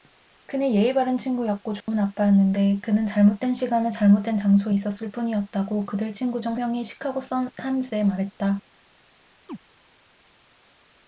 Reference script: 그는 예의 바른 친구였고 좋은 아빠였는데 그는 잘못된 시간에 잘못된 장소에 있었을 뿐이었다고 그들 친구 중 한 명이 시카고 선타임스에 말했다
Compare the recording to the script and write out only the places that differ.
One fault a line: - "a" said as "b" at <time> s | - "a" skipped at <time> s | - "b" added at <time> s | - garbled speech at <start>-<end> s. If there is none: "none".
- "한" skipped at 6.6 s